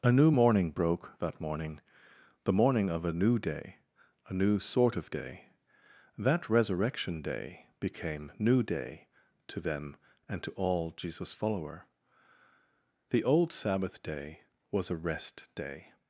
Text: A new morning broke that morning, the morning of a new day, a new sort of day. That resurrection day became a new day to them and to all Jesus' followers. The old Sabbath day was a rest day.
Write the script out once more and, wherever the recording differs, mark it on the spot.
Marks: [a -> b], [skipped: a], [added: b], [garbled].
A new morning broke that morning, the morning of a new day, a new sort of day. That resurrection day became [skipped: a] new day to them and to all Jesus' [followers. -> follower] The old Sabbath day was a rest day.